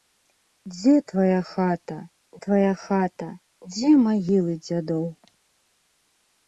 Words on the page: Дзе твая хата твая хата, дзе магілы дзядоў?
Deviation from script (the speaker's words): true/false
false